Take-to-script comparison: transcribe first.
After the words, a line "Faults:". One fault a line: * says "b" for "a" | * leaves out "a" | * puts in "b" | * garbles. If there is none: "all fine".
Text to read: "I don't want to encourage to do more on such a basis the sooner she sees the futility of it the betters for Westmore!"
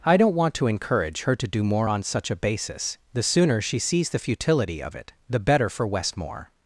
"I don't want to encourage her to do more on such a basis the sooner she sees the futility of it the better for Westmore!"
Faults:
* puts in "her"
* says "better" for "betters"